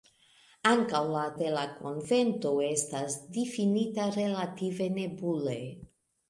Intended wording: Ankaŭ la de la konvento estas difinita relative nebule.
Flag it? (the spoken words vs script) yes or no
no